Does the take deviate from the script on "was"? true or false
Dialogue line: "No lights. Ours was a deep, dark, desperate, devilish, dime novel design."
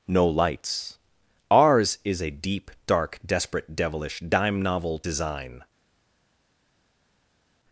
true